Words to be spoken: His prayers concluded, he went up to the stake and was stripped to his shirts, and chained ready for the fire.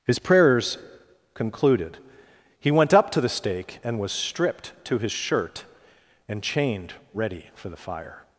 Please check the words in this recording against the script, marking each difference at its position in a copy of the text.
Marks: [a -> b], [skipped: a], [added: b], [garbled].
His prayers concluded, he went up to the stake and was stripped to his [shirts, -> shirt] and chained ready for the fire.